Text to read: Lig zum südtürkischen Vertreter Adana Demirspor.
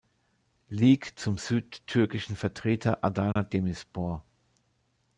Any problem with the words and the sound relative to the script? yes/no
yes